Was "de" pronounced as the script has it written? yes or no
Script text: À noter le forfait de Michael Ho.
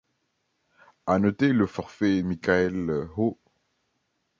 no